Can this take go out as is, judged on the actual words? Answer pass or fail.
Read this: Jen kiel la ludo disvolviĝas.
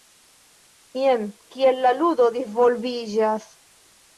pass